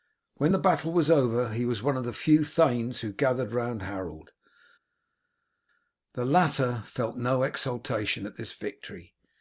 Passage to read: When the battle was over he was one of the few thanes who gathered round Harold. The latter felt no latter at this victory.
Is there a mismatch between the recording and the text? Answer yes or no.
yes